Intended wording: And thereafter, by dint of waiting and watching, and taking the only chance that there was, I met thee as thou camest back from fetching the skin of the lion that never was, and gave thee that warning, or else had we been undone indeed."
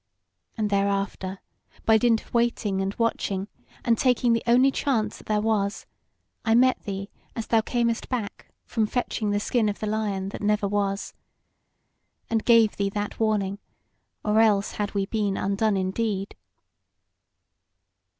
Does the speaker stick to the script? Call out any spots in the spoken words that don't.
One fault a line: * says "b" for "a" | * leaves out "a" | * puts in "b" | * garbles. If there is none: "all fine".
all fine